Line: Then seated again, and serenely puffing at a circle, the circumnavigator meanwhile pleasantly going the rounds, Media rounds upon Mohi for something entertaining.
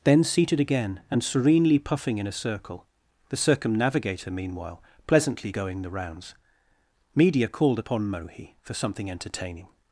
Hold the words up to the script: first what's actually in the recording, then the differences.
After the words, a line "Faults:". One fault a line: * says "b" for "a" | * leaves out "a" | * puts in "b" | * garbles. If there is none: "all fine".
Then seated again, and serenely puffing in a circle, the circumnavigator meanwhile pleasantly going the rounds, Media called upon Mohi for something entertaining.
Faults:
* says "in" for "at"
* says "called" for "rounds"